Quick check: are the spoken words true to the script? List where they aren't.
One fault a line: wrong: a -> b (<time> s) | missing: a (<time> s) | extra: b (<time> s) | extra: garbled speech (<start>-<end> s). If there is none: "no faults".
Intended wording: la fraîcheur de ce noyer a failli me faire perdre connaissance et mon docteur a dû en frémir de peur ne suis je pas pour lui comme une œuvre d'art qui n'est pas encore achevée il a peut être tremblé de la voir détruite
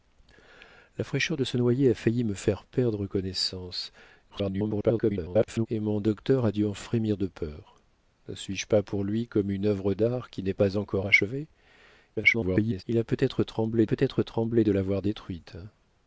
extra: garbled speech (4.3-5.7 s)
extra: garbled speech (12.2-12.8 s)
extra: peut être tremblé (13.8 s)